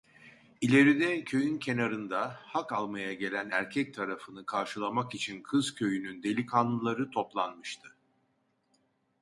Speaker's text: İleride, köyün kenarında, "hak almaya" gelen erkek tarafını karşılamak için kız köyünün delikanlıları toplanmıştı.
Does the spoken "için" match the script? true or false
true